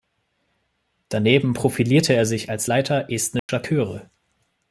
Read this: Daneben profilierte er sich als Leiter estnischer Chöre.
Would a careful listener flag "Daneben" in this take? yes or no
no